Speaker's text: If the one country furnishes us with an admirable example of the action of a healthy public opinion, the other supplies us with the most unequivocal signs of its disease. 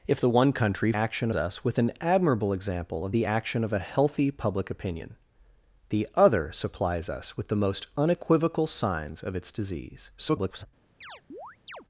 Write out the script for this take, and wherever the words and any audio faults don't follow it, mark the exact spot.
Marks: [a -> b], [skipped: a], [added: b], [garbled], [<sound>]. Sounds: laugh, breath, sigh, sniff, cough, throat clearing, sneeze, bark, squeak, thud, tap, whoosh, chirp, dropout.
If the one country [furnishes -> action] us with an admirable example of the action of a healthy public opinion, the other supplies us with the most unequivocal signs of its disease. [garbled] [chirp]